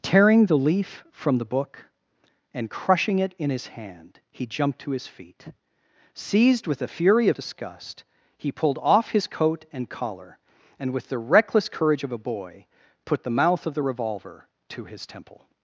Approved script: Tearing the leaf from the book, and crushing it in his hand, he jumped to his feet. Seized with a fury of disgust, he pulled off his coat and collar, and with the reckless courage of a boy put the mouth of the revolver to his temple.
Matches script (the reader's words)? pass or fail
pass